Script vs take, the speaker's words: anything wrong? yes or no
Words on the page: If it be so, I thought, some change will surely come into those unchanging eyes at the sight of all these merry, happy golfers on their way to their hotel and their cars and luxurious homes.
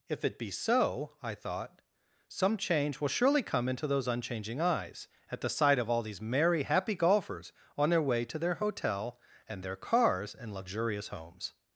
no